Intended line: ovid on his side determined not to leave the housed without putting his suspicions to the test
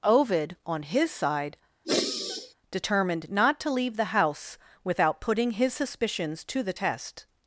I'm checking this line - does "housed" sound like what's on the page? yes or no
no